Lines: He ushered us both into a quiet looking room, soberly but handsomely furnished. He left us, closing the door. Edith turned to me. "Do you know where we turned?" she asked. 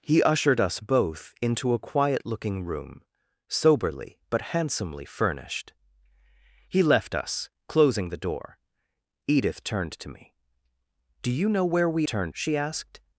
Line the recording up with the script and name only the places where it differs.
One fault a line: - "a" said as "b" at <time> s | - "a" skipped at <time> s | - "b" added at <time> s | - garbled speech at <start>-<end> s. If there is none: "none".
none